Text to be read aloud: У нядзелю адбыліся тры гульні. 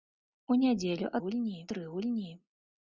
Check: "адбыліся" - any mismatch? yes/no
yes